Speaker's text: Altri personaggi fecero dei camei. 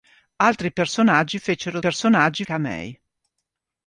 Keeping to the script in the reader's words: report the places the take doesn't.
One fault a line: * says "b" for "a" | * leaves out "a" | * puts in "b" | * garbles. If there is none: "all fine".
* says "personaggi" for "dei"